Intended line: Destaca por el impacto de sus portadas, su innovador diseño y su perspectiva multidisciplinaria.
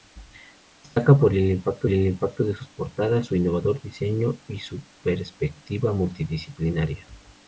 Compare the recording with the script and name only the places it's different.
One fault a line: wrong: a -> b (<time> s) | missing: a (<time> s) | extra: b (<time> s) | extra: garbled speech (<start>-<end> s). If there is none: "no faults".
extra: el impacto (1.9 s)